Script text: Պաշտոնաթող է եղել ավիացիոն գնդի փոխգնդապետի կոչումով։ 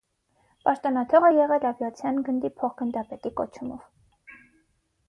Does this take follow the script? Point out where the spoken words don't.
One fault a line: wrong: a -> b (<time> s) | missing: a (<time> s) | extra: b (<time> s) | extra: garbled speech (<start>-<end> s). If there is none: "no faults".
no faults